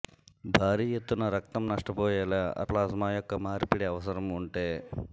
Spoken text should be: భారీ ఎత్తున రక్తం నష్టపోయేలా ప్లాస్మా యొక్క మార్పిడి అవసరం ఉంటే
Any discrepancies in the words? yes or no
no